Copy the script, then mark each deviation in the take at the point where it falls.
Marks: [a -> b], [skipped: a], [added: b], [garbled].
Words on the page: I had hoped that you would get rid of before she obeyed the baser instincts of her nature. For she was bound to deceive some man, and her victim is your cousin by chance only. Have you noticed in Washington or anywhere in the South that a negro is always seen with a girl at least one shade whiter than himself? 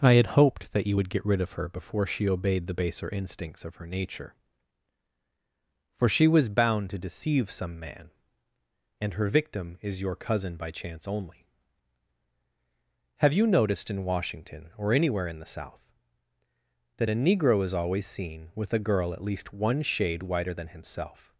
I had hoped that you would get rid of [added: her] before she obeyed the baser instincts of her nature. For she was bound to deceive some man, and her victim is your cousin by chance only. Have you noticed in Washington or anywhere in the South that a negro is always seen with a girl at least one shade whiter than himself?